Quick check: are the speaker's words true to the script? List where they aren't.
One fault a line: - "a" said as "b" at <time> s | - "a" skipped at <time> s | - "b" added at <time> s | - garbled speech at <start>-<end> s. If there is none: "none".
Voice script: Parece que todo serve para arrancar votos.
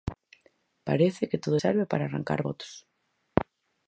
none